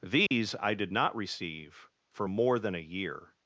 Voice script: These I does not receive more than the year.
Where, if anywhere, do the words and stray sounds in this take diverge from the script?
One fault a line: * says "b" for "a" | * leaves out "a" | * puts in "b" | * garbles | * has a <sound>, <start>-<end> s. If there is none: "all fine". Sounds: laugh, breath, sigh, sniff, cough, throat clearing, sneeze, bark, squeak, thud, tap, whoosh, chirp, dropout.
* has a dropout, 0.3-0.3 s
* says "did" for "does"
* puts in "for"
* says "a" for "the"